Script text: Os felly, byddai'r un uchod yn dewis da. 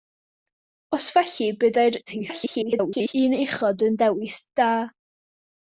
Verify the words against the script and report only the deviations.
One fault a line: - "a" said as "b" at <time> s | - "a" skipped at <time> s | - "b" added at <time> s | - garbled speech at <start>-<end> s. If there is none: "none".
- garbled speech at 2.1-3.1 s